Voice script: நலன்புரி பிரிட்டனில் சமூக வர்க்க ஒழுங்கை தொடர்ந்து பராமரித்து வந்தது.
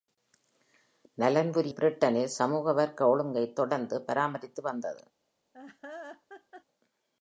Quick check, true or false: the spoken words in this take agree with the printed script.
true